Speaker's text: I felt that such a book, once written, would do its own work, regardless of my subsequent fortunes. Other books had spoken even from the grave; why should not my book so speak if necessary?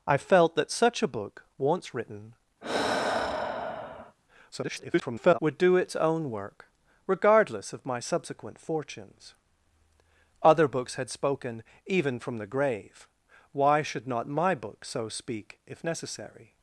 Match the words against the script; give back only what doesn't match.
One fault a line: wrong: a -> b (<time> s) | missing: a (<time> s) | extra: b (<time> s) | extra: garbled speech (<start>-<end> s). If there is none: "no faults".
extra: garbled speech (4.5-5.4 s)